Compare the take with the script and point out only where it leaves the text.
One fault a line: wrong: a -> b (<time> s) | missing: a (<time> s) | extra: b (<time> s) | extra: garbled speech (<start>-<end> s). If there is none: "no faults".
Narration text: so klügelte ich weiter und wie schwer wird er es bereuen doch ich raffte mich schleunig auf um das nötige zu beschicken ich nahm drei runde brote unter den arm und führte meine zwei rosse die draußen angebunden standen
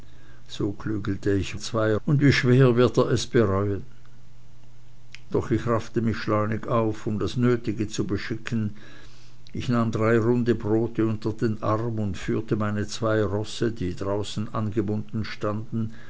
wrong: weiter -> zwei (1.6 s)